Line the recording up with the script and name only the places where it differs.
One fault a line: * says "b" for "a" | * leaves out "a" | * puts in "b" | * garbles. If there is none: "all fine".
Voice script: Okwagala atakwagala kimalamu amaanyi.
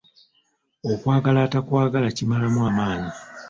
all fine